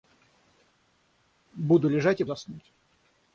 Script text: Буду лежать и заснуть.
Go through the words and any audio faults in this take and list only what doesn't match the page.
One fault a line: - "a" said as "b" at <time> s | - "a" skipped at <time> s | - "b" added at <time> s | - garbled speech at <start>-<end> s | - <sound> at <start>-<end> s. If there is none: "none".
none